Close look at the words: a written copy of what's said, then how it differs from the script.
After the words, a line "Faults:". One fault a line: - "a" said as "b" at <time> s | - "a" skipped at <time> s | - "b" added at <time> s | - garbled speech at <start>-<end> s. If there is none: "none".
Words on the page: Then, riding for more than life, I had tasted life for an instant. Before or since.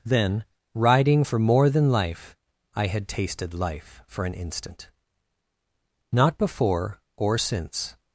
Then, riding for more than life, I had tasted life for an instant. Not before or since.
Faults:
- "Not" added at 6.1 s